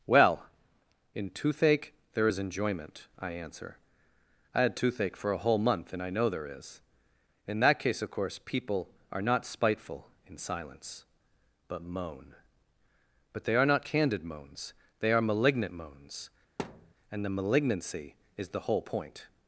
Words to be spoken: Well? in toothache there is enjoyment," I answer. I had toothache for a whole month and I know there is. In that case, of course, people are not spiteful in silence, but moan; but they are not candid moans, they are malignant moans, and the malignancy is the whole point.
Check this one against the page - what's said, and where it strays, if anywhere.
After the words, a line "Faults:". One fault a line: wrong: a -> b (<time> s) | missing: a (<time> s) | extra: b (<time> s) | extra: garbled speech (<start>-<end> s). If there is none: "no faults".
Well? in toothache there is enjoyment," I answer. I had toothache for a whole month and I know there is. In that case, of course, people are not spiteful in silence, but moan; but they are not candid moans, they are malignant moans, and the malignancy is the whole point.
Faults:
no faults